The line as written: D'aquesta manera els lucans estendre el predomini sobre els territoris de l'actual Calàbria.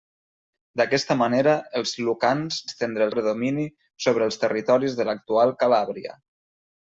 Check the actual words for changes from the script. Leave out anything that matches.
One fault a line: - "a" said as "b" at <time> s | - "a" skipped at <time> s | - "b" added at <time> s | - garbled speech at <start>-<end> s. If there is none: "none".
none